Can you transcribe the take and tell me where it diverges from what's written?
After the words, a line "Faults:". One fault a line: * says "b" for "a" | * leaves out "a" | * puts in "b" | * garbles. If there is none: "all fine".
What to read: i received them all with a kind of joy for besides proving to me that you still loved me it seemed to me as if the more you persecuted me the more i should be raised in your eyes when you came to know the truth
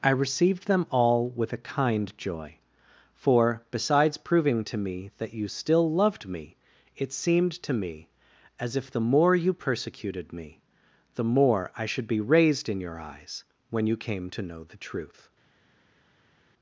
i received them all with a kind joy for besides proving to me that you still loved me it seemed to me as if the more you persecuted me the more i should be raised in your eyes when you came to know the truth
Faults:
* leaves out "of"